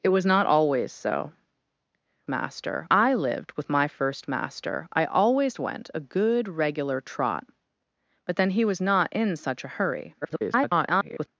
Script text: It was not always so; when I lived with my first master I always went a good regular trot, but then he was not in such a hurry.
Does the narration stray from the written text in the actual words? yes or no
yes